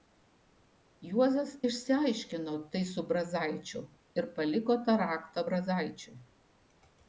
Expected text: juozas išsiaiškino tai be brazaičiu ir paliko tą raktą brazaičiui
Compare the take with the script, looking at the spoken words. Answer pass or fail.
fail